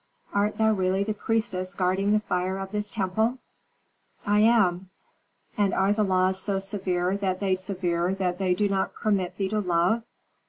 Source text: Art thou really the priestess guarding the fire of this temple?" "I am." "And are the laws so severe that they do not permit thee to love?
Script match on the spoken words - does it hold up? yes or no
no